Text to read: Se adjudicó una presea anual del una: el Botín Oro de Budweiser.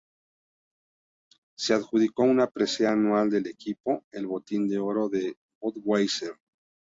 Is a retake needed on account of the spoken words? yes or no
yes